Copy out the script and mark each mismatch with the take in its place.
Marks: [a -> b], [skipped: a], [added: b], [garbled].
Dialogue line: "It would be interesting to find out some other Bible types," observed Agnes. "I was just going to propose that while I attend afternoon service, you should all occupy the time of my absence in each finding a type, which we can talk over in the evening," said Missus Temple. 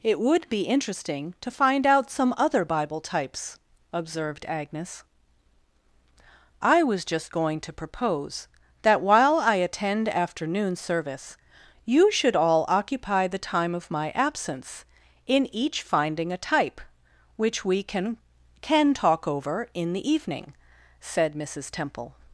"It would be interesting to find out some other Bible types," observed Agnes. "I was just going to propose that while I attend afternoon service, you should all occupy the time of my absence in each finding a type, which we can [added: can] talk over in the evening," said Missus Temple.